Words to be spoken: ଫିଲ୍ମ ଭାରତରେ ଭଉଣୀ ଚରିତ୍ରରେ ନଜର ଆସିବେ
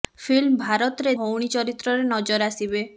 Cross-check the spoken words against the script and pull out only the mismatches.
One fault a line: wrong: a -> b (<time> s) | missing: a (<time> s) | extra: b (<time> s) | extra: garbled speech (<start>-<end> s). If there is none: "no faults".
no faults